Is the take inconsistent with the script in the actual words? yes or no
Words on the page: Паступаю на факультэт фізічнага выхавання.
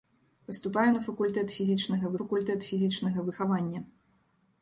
yes